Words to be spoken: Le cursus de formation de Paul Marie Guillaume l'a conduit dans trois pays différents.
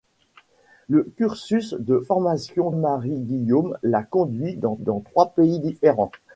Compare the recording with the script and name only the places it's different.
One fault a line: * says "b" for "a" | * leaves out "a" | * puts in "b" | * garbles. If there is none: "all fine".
* leaves out "de Paul"
* puts in "dans"